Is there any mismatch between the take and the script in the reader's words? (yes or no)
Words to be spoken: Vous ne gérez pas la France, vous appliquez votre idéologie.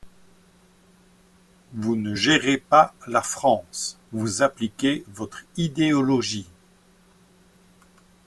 no